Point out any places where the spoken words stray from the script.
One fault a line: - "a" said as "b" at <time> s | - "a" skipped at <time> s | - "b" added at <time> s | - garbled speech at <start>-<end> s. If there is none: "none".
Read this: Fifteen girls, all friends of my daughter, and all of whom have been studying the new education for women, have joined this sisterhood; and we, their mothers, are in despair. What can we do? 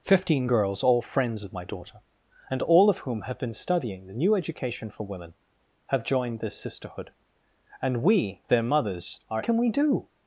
- "in despair What" skipped at 9.4 s